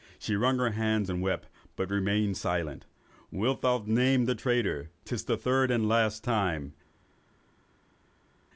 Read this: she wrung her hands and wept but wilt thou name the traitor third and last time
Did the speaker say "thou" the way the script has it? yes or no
yes